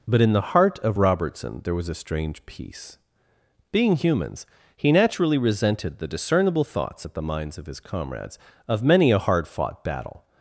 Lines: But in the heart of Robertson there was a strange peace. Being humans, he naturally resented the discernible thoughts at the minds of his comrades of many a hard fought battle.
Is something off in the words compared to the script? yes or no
no